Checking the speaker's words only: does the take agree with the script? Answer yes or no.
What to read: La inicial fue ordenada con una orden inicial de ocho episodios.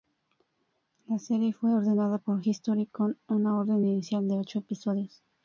no